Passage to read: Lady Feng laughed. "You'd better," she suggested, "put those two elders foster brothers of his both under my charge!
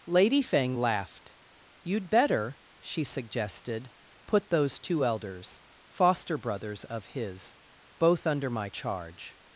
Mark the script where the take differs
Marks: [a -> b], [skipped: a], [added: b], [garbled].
Lady Feng laughed. "You'd better," she suggested, "put those two elders foster brothers of his both under my charge!